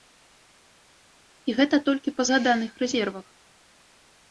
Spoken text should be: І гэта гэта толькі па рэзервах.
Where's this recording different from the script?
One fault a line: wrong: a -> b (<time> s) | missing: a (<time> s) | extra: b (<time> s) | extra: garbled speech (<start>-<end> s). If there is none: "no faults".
missing: гэта (1.8 s)
extra: згаданых (2.3 s)